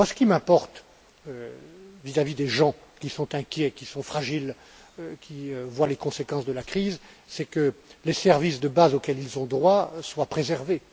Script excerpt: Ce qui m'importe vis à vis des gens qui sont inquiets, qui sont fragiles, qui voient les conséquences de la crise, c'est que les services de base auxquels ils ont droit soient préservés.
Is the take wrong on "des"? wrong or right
right